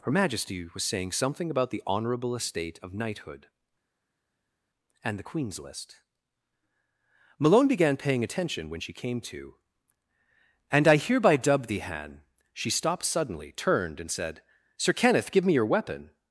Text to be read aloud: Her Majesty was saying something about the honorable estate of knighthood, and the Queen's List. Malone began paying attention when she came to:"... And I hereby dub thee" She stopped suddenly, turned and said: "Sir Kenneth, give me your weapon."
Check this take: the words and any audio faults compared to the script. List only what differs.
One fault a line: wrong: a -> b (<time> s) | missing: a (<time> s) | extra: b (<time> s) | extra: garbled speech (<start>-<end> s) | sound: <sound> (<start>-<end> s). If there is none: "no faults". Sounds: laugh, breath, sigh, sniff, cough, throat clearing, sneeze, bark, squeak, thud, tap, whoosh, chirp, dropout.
extra: han (11.8 s)